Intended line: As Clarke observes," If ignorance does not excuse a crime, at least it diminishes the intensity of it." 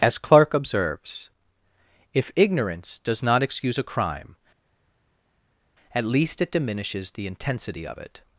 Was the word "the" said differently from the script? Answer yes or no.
no